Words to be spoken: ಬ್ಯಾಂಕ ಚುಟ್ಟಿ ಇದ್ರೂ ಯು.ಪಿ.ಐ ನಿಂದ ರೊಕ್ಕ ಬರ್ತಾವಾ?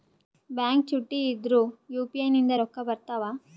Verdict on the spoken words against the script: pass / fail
pass